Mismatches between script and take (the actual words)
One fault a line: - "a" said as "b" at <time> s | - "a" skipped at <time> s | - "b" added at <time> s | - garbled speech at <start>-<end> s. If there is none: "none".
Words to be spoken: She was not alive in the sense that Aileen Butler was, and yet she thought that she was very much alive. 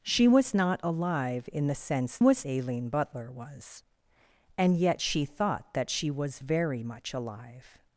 - "that" said as "was" at 2.2 s